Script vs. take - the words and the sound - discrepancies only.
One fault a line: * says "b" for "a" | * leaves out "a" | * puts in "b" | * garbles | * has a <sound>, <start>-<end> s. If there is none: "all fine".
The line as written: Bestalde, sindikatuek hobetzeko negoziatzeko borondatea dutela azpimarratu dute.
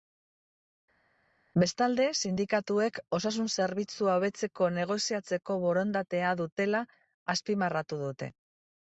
* puts in "osasun zerbitzua"